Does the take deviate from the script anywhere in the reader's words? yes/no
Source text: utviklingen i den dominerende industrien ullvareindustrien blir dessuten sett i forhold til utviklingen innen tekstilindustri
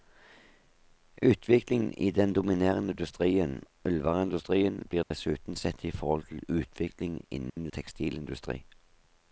no